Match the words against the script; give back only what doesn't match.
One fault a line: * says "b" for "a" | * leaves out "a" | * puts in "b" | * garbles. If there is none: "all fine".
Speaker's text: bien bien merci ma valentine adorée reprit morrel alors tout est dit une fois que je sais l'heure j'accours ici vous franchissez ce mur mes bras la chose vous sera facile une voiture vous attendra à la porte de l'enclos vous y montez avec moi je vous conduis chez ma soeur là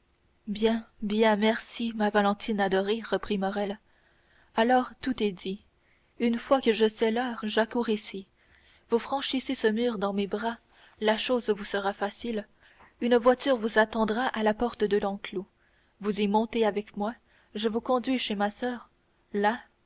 * puts in "dans"